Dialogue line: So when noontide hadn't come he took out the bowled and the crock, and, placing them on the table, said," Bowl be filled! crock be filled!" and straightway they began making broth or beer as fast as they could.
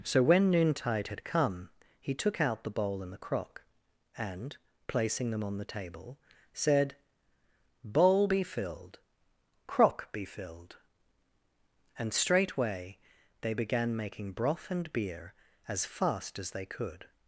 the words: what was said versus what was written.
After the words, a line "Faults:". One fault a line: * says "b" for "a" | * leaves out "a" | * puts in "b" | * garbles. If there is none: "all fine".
So when noontide had come he took out the bowl and the crock, and, placing them on the table, said," Bowl be filled! crock be filled!" and straightway they began making broth and beer as fast as they could.
Faults:
* says "had" for "hadn't"
* says "bowl" for "bowled"
* says "and" for "or"